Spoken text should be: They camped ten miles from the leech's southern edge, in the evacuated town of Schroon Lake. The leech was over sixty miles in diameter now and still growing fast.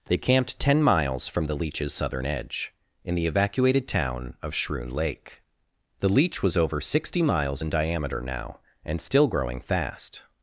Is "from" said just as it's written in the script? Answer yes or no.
yes